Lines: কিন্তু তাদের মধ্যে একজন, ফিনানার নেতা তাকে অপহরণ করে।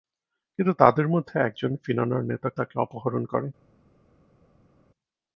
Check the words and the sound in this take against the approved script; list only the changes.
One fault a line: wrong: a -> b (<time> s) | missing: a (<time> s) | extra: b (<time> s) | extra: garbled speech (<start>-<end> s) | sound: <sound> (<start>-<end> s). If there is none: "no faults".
no faults